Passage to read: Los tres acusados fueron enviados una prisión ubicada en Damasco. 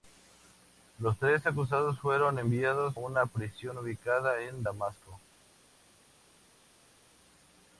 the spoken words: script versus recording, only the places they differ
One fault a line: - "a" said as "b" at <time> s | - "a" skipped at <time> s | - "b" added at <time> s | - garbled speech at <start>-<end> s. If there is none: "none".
none